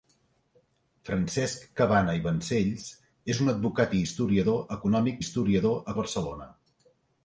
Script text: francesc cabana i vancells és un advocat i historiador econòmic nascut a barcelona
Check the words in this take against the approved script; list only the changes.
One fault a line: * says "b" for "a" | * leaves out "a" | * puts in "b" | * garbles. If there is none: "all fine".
* says "historiador" for "nascut"